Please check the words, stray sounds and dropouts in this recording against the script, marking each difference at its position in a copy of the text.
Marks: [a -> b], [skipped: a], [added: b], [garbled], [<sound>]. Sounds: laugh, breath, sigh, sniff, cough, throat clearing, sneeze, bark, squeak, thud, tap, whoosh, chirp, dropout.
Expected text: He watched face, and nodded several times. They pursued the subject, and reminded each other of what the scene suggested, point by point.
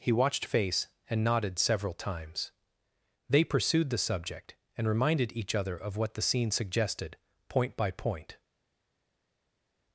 He watched face, and nodded several times. They pursued the subject, and reminded each other of what the scene suggested, point by point.